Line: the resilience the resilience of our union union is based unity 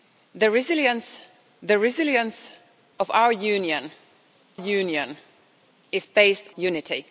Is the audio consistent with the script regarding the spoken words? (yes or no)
yes